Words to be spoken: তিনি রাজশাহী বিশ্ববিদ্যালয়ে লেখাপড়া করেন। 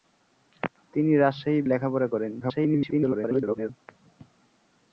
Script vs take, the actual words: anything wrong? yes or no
yes